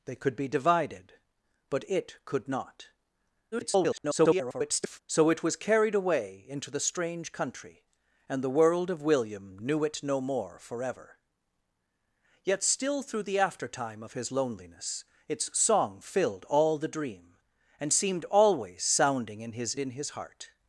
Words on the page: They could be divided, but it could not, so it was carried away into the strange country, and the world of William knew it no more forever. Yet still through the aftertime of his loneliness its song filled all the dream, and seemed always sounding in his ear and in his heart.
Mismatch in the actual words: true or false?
true